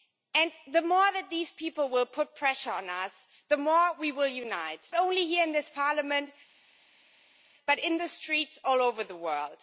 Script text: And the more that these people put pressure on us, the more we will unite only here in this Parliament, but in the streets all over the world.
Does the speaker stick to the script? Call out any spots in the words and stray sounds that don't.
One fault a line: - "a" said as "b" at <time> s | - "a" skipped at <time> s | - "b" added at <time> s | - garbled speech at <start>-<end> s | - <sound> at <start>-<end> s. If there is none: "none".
none